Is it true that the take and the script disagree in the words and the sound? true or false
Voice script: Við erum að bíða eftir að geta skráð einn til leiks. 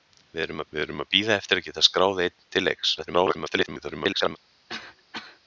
true